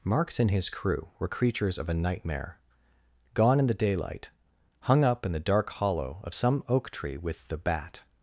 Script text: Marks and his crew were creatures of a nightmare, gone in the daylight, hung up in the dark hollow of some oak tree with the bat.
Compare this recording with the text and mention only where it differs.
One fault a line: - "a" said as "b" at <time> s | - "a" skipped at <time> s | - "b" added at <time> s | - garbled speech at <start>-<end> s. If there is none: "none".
none